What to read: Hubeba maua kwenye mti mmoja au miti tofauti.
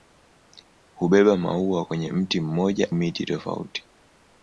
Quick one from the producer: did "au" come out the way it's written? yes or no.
no